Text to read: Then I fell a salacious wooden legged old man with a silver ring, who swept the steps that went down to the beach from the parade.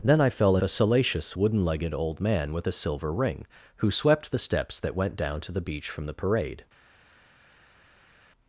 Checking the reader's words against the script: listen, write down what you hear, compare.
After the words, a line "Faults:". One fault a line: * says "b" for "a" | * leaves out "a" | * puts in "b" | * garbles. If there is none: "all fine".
Then I fell a salacious wooden legged old man with a silver ring, who swept the steps that went down to the beach from the parade.
Faults:
all fine